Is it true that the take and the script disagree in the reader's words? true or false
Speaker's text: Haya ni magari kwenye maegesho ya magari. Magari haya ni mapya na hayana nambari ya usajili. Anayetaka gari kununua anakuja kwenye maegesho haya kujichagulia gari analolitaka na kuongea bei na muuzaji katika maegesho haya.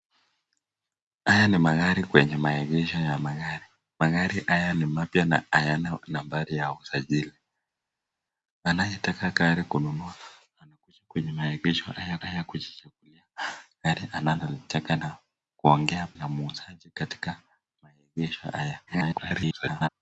true